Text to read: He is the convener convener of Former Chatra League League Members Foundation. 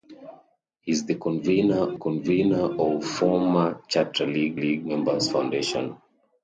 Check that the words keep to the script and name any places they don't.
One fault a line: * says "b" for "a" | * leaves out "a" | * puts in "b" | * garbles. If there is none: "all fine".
all fine